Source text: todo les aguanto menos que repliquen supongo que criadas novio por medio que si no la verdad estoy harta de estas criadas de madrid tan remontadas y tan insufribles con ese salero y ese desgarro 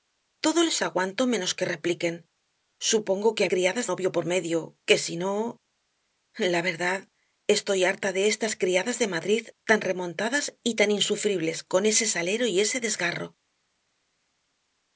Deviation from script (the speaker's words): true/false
false